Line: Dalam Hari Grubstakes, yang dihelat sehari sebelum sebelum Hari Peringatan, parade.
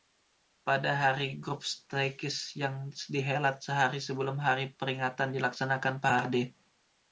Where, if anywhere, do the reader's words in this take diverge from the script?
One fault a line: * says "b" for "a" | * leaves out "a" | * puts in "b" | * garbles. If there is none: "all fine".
* says "Pada" for "Dalam"
* leaves out "sebelum"
* puts in "dilaksanakan"